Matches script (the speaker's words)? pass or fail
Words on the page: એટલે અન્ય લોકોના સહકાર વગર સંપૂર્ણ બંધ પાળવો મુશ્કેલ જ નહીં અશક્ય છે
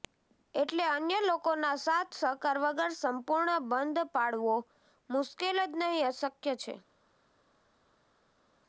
fail